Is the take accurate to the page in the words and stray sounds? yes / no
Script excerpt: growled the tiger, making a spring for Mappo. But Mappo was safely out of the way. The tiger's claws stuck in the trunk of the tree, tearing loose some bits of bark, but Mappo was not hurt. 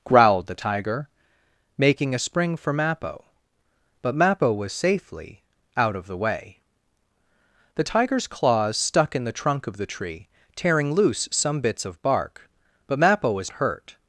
no